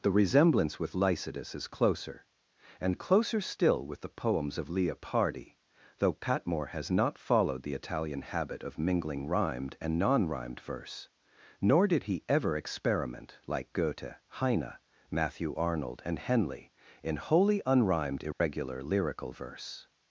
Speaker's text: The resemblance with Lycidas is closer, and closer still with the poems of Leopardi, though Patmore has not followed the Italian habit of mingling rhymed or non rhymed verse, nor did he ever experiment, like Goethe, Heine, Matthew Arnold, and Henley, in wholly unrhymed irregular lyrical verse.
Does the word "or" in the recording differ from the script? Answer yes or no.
yes